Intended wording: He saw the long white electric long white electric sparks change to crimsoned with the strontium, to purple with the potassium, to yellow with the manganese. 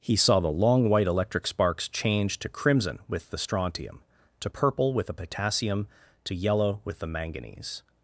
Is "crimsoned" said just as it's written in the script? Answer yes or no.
no